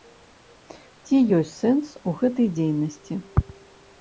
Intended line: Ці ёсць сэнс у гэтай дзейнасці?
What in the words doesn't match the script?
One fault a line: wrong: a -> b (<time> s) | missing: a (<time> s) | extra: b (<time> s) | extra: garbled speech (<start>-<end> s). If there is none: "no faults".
no faults